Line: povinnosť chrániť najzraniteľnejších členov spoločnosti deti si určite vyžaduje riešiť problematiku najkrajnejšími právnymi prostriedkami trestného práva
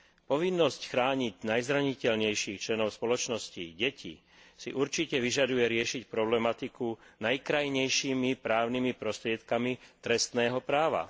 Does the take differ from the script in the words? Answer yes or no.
no